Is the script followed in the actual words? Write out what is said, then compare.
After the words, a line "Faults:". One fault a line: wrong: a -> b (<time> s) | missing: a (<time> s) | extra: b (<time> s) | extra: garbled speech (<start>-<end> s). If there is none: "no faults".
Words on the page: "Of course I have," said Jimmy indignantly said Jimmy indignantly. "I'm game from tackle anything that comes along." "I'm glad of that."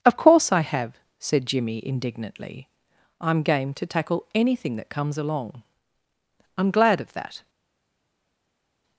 "Of course I have," said Jimmy indignantly. "I'm game to tackle anything that comes along." "I'm glad of that."
Faults:
missing: said Jimmy indignantly (2.7 s)
wrong: from -> to (3.8 s)